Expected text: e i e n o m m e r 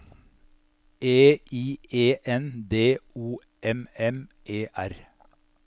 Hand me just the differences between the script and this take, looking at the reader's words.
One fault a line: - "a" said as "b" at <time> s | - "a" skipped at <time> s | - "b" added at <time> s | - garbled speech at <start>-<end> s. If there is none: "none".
- "d" added at 2.7 s